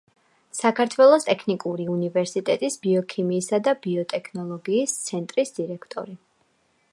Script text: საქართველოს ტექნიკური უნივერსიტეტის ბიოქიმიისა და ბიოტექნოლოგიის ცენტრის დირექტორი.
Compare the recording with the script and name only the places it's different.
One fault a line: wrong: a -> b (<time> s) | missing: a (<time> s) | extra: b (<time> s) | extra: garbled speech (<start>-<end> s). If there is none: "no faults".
no faults